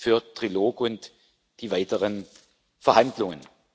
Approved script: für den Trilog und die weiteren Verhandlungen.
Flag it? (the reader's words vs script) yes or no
no